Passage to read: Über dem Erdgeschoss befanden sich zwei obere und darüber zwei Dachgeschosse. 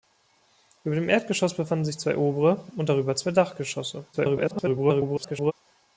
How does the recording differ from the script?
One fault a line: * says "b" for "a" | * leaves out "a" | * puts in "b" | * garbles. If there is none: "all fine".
* garbles